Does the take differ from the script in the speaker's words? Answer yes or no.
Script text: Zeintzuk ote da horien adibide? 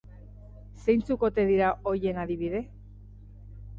yes